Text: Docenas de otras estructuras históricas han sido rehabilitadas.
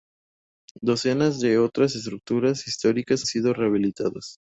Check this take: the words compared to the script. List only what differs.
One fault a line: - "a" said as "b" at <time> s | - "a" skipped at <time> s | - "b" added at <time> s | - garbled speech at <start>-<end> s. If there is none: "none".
- "han" skipped at 3.3 s